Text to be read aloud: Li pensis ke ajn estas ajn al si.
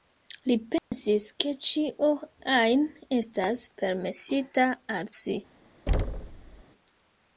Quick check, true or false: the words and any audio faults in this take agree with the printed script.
false